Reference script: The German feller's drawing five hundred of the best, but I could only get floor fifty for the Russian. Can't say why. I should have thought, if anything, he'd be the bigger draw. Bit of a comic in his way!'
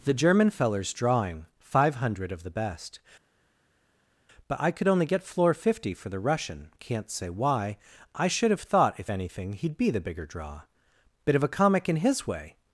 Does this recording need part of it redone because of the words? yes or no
no